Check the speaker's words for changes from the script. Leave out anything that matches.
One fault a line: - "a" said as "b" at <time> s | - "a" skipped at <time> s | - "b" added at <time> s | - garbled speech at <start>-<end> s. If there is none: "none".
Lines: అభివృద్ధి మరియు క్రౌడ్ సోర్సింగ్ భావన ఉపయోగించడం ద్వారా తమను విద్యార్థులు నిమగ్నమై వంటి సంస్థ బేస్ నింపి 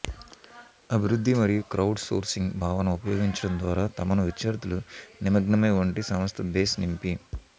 none